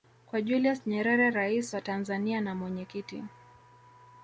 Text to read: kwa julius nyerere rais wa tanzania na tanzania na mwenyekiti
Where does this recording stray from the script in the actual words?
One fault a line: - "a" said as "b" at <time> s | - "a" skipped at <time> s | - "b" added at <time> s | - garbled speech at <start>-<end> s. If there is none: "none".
- "tanzania na" skipped at 2.6 s